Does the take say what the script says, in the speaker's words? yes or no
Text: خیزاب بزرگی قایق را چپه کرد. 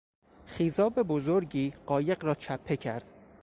yes